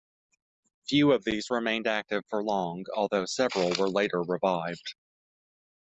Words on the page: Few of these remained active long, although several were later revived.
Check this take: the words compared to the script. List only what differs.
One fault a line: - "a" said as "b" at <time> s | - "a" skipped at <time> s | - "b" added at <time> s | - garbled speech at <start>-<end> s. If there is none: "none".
- "for" added at 2.3 s